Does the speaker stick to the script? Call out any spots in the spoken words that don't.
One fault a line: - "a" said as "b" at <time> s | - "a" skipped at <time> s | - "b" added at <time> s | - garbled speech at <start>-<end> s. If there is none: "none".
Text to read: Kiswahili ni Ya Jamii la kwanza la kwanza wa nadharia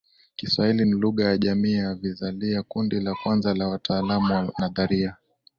- "Lugha" added at 0.9 s
- "ya Vizalia Kundi" added at 1.7 s
- "kwanza" said as "wataalamu" at 3.7 s